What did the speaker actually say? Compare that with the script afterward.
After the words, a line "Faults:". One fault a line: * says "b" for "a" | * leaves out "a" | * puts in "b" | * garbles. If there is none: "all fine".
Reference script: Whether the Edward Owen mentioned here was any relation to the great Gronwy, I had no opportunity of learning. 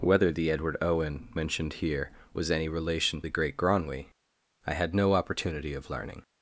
Whether the Edward Owen mentioned here was any relation the great Gronwy, I had no opportunity of learning.
Faults:
* leaves out "to"